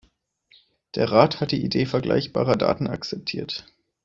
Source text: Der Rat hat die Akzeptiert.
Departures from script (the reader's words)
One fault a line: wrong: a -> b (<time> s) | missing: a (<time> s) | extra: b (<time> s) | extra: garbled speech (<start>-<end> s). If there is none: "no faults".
extra: Idee vergleichbarer Daten (1.6 s)